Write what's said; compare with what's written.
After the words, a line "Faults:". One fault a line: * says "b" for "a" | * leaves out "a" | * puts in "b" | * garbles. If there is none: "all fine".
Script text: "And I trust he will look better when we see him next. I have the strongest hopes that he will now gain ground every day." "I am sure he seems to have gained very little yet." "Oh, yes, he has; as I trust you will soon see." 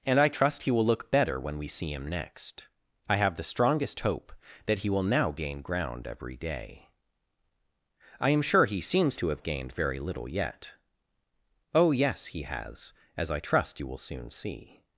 "And I trust he will look better when we see him next. I have the strongest hope that he will now gain ground every day." "I am sure he seems to have gained very little yet." "Oh, yes, he has; as I trust you will soon see."
Faults:
* says "hope" for "hopes"